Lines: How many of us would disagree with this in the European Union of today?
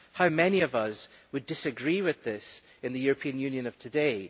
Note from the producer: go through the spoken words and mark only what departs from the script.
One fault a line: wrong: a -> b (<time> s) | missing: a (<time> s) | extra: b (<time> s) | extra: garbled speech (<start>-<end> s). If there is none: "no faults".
no faults